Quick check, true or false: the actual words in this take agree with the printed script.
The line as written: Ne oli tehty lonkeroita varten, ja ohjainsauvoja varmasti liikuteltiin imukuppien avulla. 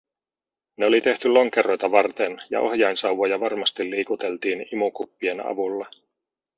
true